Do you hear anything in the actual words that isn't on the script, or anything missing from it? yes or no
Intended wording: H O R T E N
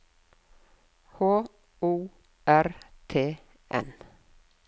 yes